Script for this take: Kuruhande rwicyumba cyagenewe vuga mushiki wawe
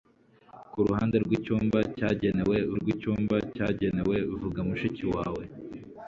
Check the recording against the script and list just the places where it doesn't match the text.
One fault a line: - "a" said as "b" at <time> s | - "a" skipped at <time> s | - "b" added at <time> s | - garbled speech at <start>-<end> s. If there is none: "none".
- "rwicyumba cyagenewe" added at 2.8 s